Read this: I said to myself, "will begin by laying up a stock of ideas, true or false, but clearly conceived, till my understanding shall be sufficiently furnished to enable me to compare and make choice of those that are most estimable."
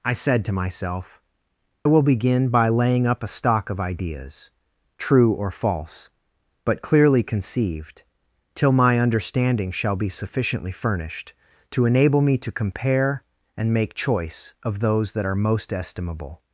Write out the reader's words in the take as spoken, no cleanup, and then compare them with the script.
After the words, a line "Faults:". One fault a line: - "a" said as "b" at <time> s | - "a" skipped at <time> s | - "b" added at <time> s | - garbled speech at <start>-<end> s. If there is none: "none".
I said to myself, "will begin by laying up a stock of ideas, true or false, but clearly conceived, till my understanding shall be sufficiently furnished to enable me to compare and make choice of those that are most estimable."
Faults:
none